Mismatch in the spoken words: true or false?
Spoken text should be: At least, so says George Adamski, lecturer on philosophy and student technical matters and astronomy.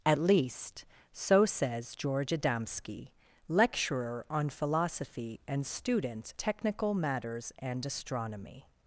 false